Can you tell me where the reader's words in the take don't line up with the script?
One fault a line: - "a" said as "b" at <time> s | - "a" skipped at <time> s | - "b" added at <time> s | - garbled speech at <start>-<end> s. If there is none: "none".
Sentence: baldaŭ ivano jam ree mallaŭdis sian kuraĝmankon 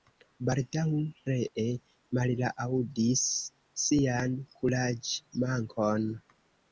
- "ivano jam" skipped at 0.9 s